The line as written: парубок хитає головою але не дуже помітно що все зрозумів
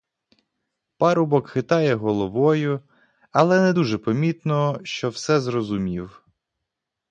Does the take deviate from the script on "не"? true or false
false